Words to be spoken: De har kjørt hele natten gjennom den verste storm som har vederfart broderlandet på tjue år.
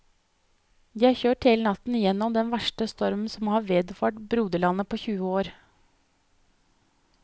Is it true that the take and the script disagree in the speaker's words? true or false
false